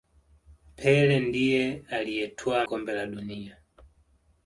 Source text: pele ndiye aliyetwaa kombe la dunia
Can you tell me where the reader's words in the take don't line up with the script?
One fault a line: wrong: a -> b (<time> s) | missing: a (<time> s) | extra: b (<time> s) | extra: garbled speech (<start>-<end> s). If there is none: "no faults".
no faults